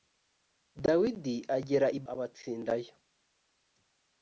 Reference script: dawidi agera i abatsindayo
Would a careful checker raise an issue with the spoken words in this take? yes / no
no